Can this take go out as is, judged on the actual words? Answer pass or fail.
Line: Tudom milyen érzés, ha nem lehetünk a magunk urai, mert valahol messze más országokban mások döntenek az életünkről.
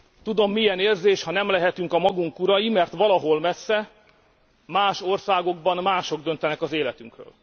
pass